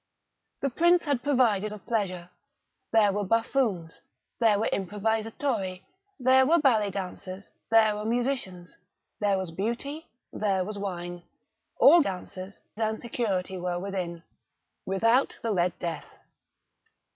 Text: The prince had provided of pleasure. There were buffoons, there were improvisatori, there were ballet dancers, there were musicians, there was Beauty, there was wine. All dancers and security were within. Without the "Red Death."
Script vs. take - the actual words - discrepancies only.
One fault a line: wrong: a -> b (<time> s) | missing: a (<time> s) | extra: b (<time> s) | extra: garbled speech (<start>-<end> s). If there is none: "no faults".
no faults